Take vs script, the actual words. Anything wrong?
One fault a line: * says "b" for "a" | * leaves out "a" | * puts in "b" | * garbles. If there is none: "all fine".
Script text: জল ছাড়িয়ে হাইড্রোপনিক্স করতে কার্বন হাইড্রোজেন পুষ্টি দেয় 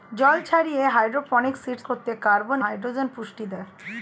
all fine